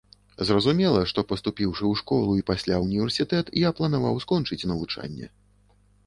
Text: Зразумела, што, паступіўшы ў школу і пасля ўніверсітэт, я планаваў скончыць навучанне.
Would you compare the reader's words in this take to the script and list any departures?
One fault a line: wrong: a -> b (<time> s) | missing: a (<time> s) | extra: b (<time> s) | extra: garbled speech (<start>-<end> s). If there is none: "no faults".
no faults